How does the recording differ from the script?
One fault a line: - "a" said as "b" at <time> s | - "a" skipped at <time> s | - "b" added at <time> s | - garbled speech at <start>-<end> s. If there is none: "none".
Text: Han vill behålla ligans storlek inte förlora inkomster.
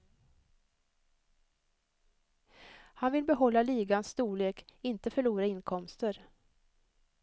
none